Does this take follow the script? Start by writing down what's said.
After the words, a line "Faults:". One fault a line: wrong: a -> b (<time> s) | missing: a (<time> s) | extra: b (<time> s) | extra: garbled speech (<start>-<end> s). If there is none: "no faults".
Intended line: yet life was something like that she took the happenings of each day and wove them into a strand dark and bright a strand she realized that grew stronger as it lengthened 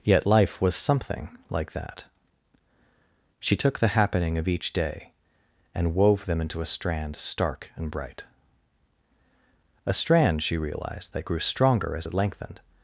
yet life was something like that she took the happening of each day and wove them into a strand stark and bright a strand she realized that grew stronger as it lengthened
Faults:
wrong: happenings -> happening (3.9 s)
wrong: dark -> stark (7.2 s)